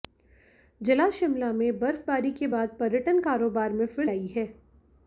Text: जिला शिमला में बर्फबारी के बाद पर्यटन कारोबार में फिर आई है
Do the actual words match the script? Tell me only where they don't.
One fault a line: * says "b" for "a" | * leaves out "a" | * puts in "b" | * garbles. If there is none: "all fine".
all fine